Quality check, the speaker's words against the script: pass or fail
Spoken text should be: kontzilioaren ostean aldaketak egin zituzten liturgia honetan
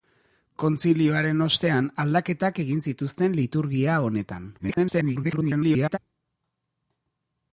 fail